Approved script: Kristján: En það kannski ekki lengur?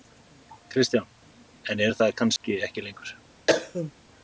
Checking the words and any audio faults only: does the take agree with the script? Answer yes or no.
no